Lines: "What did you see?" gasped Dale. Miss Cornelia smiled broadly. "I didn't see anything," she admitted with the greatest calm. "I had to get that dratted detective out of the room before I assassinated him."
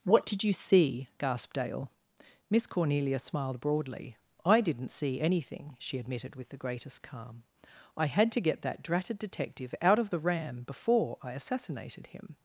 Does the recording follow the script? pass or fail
fail